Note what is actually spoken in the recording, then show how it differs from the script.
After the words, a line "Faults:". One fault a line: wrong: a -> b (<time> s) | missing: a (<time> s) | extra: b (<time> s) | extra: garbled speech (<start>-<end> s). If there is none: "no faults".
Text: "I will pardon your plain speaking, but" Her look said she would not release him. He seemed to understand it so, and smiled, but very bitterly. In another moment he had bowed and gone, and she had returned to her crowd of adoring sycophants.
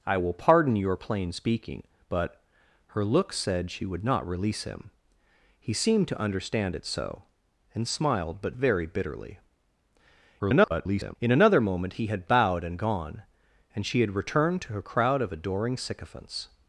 "I will pardon your plain speaking, but" Her look said she would not release him. He seemed to understand it so, and smiled, but very bitterly. [garbled] In another moment he had bowed and gone, and she had returned to her crowd of adoring sycophants.
Faults:
extra: garbled speech (10.4-11.2 s)